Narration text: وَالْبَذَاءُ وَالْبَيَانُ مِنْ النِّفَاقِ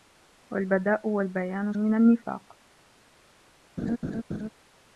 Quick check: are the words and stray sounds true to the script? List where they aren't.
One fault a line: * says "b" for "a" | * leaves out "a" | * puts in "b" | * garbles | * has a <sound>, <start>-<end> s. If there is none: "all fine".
* has a laugh, 3.8-4.5 s